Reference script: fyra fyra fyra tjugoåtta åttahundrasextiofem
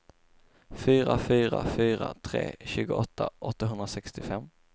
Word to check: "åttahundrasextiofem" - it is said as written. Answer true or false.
true